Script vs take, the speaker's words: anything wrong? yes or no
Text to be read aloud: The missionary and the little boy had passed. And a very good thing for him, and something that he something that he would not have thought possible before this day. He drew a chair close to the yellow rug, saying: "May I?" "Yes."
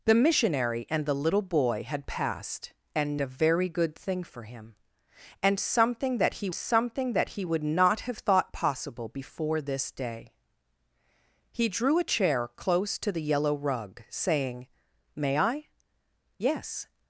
no